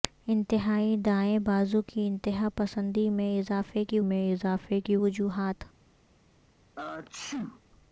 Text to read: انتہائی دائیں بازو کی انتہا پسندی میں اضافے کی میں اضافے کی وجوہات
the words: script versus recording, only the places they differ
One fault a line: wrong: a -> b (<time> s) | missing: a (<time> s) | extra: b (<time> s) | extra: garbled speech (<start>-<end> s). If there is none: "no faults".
no faults